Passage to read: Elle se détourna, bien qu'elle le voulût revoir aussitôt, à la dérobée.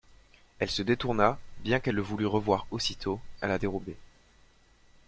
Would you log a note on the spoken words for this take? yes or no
no